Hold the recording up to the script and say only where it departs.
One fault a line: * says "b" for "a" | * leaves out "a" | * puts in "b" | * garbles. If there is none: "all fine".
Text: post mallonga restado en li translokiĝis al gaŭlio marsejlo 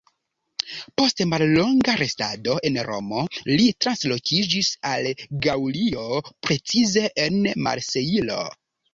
* puts in "romo"
* puts in "precize en"